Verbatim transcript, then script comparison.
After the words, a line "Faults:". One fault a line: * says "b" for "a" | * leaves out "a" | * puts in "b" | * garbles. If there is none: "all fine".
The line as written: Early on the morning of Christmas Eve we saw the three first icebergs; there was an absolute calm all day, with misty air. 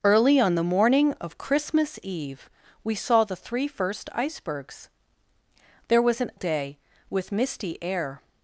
Early on the morning of Christmas Eve we saw the three first icebergs; there was an day, with misty air.
Faults:
* leaves out "absolute calm all"